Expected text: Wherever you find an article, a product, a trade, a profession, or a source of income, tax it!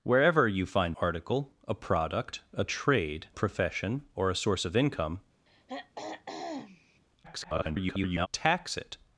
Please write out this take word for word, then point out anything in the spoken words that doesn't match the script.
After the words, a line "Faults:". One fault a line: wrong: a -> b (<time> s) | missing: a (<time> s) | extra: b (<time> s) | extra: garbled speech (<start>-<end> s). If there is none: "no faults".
Wherever you find article, a product, a trade, profession, or a source of income, [garbled] tax it!
Faults:
missing: an (1.0 s)
missing: a (3.3 s)
extra: garbled speech (7.2-8.3 s)